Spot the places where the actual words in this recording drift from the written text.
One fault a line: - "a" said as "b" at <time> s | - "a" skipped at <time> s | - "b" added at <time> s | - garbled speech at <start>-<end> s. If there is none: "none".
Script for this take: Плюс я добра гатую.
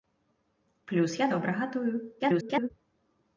- garbled speech at 2.2-2.7 s